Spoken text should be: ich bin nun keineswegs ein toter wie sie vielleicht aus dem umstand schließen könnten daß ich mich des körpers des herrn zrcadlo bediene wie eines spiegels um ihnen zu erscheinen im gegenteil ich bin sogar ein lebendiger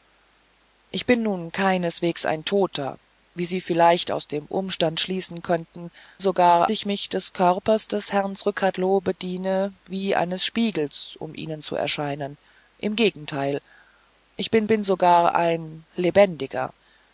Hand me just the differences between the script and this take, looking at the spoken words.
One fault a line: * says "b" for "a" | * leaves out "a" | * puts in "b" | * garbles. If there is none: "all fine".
* says "sogar" for "daß"
* puts in "bin"